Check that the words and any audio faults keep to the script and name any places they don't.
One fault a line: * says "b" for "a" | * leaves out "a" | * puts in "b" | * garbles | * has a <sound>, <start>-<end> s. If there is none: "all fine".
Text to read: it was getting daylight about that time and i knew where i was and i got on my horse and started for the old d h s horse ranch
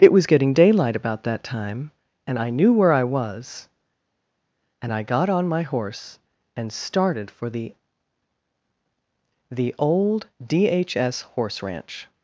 * puts in "the"